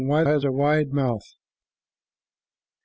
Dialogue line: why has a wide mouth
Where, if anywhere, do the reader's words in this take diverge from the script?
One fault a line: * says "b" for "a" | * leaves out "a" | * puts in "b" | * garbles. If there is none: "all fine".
all fine